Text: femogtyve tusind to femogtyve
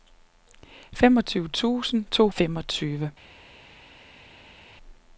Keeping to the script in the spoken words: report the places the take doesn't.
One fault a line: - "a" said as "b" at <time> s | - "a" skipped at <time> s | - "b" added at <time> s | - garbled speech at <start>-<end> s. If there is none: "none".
none